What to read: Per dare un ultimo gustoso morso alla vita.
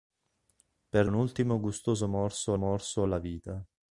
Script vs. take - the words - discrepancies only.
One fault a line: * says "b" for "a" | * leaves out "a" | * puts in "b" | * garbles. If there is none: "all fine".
* leaves out "dare"
* puts in "morso"